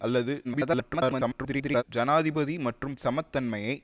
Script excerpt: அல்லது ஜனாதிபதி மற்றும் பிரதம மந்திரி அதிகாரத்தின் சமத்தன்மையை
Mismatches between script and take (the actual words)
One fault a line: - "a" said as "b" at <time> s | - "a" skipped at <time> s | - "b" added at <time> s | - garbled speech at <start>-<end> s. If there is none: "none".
- garbled speech at 0.4-1.8 s
- "பிரதம மந்திரி அதிகாரத்தின்" skipped at 3.0 s